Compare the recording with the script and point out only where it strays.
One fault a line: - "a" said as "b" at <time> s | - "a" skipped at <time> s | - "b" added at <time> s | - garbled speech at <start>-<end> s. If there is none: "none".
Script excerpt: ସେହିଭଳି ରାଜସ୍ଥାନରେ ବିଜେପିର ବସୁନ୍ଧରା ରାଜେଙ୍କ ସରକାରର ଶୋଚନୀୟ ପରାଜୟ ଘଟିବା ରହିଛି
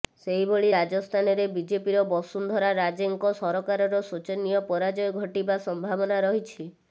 - "ସମ୍ଭାବନା" added at 5.7 s